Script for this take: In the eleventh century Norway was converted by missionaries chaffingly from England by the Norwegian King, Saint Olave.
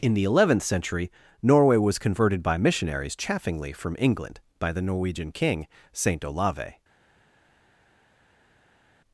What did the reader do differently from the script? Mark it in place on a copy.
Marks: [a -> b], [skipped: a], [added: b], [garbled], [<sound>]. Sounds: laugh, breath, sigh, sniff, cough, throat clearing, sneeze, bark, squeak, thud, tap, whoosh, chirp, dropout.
In the eleventh century Norway was converted by missionaries chaffingly from England by the Norwegian King, Saint Olave.